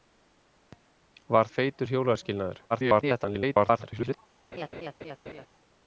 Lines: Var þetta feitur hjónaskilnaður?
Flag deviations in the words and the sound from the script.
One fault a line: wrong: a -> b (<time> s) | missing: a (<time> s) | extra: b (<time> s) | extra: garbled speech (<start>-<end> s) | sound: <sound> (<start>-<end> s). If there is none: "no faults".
missing: þetta (1.5 s)
extra: garbled speech (2.7-4.2 s)
sound: laugh (4.5-5.5 s)